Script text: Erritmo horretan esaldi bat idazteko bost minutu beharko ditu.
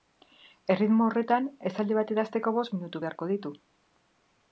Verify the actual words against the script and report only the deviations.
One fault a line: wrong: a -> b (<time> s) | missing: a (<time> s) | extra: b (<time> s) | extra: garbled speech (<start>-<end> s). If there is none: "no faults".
no faults